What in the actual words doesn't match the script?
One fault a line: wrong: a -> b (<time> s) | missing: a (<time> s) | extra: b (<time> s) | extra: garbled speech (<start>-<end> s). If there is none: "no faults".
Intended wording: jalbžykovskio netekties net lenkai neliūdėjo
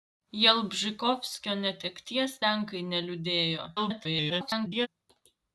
missing: net (2.3 s)
extra: garbled speech (3.8-4.9 s)